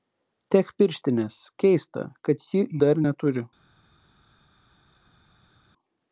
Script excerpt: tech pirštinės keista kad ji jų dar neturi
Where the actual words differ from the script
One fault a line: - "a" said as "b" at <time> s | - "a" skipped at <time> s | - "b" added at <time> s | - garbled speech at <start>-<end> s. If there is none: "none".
- "jų" skipped at 2.6 s